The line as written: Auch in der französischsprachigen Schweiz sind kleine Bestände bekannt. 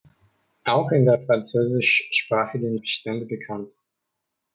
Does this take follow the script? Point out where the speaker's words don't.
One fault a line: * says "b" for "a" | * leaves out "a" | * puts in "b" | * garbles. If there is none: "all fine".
* leaves out "Schweiz sind kleine"